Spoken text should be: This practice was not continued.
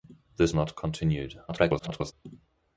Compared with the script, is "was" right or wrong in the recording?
wrong